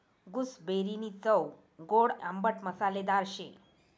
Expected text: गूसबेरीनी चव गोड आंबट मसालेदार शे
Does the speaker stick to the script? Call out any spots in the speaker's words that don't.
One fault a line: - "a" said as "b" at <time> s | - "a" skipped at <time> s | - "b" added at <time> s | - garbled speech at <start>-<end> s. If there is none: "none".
none